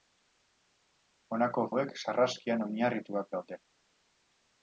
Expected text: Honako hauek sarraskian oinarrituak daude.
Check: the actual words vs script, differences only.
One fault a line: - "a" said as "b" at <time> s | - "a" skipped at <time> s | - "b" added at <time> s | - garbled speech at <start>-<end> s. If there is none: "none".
none